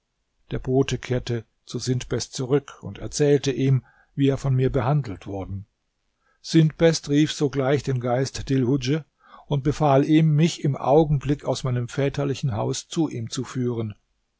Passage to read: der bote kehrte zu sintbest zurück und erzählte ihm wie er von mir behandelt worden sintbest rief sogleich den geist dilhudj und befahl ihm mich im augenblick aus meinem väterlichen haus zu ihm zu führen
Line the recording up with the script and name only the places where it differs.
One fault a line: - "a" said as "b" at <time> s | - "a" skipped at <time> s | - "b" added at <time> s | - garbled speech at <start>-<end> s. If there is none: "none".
none